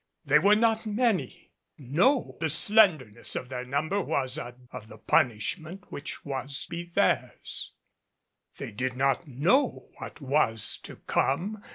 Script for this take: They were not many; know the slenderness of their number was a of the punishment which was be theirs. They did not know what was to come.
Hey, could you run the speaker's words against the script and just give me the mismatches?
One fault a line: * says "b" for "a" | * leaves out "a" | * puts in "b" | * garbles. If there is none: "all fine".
all fine